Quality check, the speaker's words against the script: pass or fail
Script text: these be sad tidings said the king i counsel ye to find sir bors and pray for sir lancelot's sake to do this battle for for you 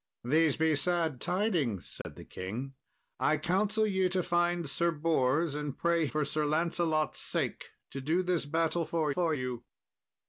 pass